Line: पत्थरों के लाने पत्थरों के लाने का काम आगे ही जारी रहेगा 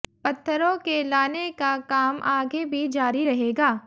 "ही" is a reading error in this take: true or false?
true